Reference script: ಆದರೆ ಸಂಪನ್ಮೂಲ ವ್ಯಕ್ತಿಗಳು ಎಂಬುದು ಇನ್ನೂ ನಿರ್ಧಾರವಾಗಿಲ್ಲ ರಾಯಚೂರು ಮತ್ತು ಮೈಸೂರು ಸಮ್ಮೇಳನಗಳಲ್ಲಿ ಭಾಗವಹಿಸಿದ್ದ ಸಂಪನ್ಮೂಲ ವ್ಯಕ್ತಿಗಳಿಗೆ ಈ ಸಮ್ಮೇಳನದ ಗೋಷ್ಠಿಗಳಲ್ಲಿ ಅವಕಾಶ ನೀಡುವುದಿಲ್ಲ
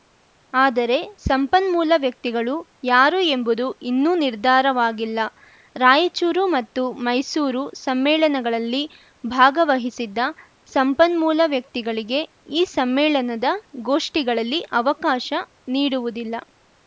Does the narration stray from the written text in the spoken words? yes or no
yes